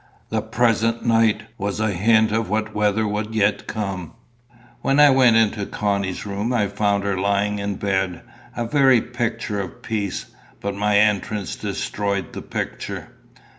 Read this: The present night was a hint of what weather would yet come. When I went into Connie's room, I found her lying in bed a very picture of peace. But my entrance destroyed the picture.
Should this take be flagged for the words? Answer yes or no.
no